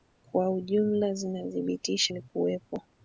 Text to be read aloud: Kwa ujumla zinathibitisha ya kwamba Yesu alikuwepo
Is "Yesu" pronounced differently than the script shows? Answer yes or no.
yes